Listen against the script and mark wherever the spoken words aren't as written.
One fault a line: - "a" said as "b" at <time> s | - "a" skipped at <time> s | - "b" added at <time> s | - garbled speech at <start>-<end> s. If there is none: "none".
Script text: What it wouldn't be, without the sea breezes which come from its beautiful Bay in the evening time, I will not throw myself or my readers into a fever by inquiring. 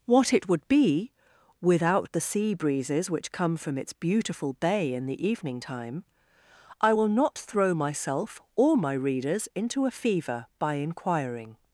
- "wouldn't" said as "would" at 0.5 s